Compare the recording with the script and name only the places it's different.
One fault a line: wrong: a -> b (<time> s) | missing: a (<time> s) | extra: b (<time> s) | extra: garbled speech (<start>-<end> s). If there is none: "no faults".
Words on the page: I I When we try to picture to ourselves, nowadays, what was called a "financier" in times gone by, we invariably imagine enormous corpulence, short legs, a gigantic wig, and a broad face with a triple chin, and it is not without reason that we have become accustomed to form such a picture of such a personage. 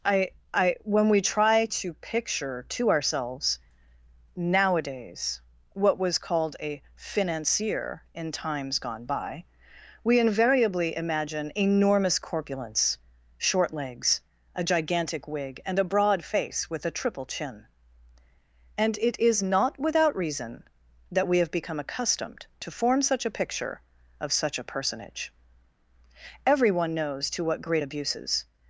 extra: Everyone knows to what great abuses (26.5 s)